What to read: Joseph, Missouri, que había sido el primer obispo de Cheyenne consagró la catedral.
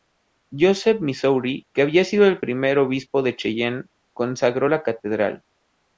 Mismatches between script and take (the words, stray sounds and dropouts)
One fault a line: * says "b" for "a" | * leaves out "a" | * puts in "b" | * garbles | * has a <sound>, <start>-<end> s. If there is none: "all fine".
all fine